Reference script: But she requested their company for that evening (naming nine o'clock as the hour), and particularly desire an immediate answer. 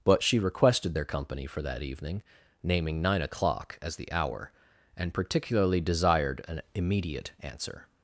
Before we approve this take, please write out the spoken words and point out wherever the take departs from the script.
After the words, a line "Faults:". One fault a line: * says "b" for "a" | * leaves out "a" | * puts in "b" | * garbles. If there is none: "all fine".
But she requested their company for that evening (naming nine o'clock as the hour), and particularly desired an immediate answer.
Faults:
* says "desired" for "desire"